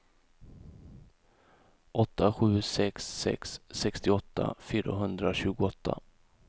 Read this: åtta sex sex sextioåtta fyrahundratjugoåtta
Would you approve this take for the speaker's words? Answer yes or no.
no